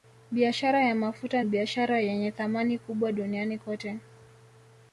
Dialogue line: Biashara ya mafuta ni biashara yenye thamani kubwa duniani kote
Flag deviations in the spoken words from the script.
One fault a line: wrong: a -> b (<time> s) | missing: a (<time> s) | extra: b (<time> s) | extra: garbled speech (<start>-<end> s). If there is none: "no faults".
missing: ni (1.4 s)